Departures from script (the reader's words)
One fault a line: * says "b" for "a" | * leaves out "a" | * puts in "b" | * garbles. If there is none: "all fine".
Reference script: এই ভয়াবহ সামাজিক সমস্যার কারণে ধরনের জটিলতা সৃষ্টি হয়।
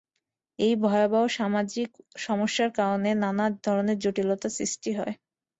* puts in "নানা"